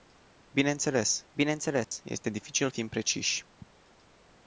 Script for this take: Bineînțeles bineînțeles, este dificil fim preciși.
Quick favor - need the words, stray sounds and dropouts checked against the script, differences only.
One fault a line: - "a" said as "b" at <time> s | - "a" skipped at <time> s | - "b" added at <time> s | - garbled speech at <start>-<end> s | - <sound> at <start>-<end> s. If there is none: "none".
- dropout at 1.8-1.9 s